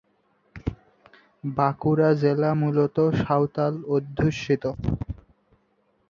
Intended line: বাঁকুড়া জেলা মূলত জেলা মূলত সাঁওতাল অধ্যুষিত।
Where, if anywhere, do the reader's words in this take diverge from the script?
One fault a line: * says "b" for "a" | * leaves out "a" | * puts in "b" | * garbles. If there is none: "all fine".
* leaves out "জেলা মূলত"